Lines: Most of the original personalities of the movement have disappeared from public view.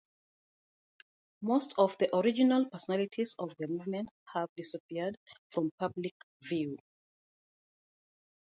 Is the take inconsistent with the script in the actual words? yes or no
no